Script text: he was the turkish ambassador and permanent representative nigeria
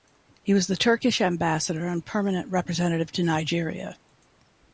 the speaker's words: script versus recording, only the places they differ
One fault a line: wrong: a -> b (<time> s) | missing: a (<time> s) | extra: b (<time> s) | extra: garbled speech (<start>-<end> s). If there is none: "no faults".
extra: to (3.1 s)